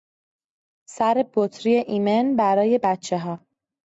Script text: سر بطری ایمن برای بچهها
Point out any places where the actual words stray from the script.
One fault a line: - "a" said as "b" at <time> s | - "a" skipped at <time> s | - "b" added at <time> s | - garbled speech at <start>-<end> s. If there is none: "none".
none